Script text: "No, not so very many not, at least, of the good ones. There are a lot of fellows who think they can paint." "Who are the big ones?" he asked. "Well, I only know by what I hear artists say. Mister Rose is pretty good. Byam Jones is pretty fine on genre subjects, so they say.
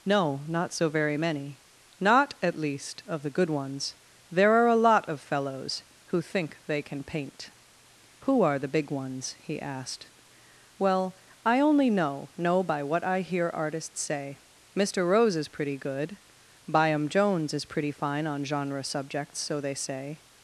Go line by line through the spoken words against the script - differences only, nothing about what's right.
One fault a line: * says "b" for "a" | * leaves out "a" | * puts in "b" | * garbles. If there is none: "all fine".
* puts in "know"